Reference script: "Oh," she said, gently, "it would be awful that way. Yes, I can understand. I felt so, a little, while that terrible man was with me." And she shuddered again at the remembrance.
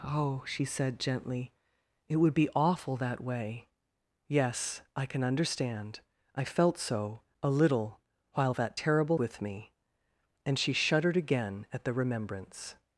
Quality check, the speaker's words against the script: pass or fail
fail